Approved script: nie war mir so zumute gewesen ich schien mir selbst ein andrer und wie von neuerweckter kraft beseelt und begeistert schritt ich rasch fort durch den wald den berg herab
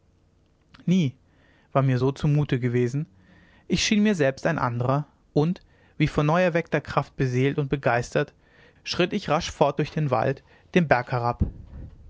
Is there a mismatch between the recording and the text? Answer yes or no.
no